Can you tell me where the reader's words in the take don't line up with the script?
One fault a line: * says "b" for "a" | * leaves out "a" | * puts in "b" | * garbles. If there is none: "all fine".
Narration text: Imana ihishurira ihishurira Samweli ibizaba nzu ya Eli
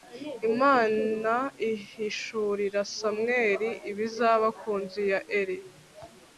* leaves out "ihishurira"
* puts in "ku"